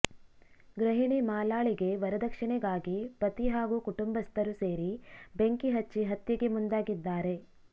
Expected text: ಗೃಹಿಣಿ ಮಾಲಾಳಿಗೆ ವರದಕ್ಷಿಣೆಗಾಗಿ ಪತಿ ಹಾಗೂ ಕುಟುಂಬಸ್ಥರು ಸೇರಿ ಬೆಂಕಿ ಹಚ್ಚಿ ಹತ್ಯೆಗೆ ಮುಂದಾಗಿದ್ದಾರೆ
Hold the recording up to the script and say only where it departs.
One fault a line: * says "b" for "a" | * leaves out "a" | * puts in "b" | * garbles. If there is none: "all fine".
all fine